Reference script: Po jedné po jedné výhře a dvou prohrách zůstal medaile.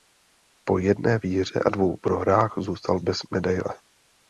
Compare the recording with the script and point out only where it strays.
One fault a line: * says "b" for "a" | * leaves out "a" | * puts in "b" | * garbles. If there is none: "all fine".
* leaves out "po jedné"
* puts in "bez"